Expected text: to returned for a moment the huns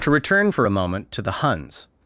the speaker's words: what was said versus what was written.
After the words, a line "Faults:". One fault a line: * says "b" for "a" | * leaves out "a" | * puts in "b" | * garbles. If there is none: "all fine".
to return for a moment to the huns
Faults:
* says "return" for "returned"
* puts in "to"